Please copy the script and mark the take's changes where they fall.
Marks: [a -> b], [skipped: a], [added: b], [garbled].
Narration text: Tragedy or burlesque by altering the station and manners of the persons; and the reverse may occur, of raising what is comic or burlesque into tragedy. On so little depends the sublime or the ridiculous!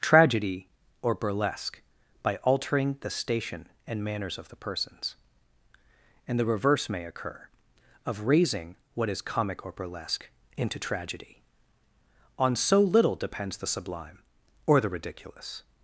Tragedy or burlesque by altering the station and manners of the persons; and the reverse may occur, of raising what is comic or burlesque into tragedy. On so little depends the sublime or the ridiculous!